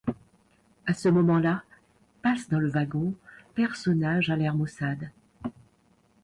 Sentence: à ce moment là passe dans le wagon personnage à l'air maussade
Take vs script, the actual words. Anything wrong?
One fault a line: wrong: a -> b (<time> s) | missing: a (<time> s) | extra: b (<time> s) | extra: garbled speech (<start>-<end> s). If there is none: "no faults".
no faults